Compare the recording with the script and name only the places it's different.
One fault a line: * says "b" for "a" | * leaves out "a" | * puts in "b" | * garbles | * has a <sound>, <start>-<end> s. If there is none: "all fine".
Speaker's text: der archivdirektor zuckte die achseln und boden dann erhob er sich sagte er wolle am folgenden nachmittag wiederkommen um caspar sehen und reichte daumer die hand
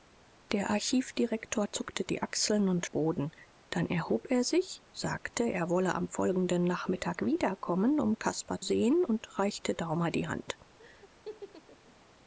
* has a laugh, 10.8-11.9 s